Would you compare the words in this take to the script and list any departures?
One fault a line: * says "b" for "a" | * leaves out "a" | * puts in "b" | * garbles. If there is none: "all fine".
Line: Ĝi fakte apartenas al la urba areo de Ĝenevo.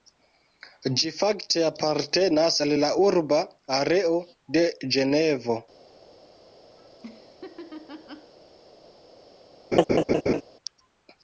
all fine